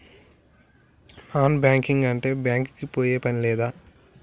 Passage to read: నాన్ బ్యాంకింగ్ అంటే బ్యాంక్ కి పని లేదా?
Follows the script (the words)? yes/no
no